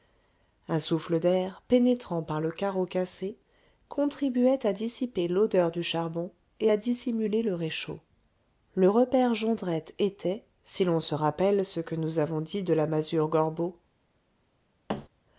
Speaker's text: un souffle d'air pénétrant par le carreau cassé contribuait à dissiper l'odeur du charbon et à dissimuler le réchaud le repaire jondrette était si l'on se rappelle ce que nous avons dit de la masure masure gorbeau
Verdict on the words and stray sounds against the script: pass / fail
fail